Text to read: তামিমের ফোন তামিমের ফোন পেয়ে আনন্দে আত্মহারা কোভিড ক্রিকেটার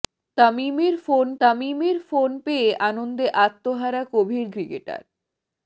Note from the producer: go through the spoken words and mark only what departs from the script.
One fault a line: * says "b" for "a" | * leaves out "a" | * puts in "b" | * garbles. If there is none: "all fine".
all fine